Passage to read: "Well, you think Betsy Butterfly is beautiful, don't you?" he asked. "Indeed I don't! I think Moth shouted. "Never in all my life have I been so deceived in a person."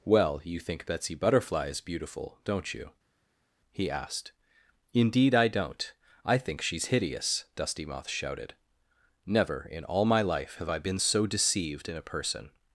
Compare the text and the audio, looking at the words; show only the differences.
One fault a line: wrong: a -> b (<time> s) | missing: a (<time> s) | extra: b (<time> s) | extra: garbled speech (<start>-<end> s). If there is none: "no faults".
extra: she's hideous Dusty (6.6 s)